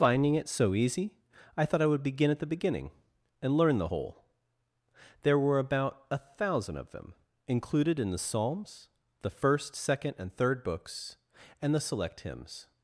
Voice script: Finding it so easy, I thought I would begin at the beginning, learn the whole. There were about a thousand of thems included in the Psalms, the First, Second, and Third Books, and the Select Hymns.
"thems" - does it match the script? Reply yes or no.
no